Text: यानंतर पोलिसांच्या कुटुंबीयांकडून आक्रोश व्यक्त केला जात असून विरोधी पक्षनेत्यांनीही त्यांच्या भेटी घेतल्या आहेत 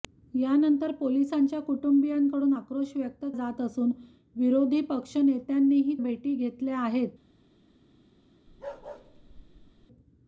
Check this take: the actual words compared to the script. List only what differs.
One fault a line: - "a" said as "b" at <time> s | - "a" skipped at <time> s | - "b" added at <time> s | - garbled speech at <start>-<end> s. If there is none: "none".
- "केला" skipped at 3.2 s
- "त्यांच्या" skipped at 6.0 s